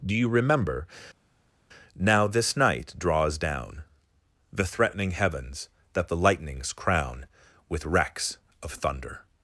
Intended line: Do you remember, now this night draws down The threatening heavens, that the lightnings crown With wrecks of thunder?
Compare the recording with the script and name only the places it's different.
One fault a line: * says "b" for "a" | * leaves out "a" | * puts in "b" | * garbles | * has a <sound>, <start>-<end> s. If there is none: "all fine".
all fine